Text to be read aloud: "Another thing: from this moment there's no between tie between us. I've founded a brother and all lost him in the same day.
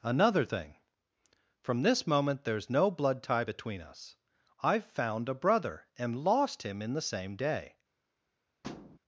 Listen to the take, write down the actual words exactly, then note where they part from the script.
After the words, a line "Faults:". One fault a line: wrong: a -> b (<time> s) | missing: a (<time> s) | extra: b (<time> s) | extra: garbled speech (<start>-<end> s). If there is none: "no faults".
"Another thing: from this moment there's no blood tie between us. I've found a brother and lost him in the same day.
Faults:
wrong: between -> blood (2.9 s)
wrong: founded -> found (4.8 s)
missing: all (6.2 s)